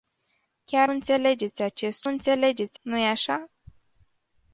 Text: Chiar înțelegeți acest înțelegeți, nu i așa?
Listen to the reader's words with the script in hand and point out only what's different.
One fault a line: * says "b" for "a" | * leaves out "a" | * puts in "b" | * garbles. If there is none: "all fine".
all fine